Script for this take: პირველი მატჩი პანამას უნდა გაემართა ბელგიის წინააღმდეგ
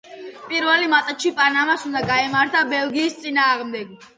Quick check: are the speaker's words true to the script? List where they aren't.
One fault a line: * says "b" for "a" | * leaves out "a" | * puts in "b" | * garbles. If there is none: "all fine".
all fine